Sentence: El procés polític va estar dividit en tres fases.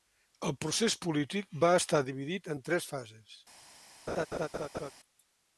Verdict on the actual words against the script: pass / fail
pass